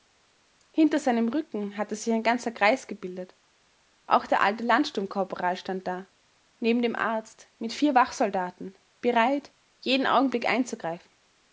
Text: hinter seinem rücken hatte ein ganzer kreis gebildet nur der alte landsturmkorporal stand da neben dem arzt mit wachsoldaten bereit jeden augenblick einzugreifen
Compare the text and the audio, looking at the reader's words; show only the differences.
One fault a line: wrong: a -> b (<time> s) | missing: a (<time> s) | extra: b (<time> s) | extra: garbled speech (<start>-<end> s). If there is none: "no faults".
extra: sich (1.9 s)
wrong: nur -> auch (4.1 s)
extra: vier (7.7 s)